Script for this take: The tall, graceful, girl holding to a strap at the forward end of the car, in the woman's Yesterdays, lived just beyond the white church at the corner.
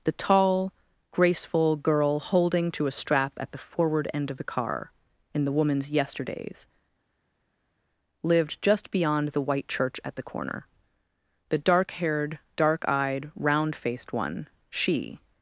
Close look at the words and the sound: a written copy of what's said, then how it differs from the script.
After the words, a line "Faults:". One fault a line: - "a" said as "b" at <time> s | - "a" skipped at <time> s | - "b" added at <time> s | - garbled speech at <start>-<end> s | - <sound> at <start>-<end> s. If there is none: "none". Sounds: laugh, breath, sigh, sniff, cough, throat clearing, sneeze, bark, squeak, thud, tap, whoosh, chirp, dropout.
The tall, graceful, girl holding to a strap at the forward end of the car, in the woman's Yesterdays, lived just beyond the white church at the corner. The dark haired, dark eyed, round faced one, she
Faults:
- "The dark haired dark eyed round faced one she" added at 11.5 s